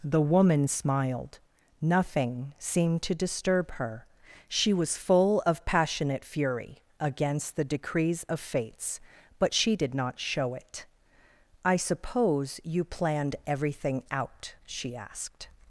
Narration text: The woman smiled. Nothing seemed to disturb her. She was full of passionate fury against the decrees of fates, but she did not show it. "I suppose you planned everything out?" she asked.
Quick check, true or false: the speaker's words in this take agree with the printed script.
true